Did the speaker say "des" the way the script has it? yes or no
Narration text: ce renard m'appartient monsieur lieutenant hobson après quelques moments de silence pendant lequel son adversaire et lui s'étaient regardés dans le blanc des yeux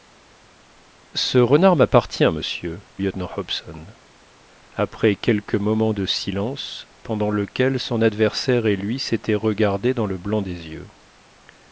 yes